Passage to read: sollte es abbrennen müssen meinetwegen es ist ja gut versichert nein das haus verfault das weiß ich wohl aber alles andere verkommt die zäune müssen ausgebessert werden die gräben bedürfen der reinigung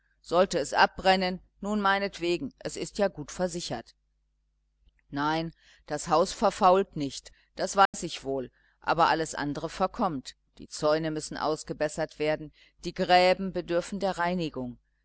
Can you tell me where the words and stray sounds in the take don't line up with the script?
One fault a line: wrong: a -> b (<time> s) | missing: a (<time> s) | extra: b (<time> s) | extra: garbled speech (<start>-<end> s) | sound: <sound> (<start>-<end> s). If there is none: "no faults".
wrong: müssen -> nun (1.6 s)
extra: nicht (7.0 s)
sound: dropout (7.9-7.9 s)